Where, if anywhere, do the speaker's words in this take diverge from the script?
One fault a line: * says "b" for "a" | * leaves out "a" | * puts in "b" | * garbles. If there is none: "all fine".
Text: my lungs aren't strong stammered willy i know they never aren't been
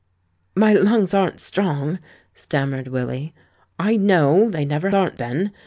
all fine